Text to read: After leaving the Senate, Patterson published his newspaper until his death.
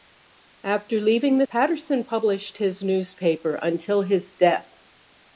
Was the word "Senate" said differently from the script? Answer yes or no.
yes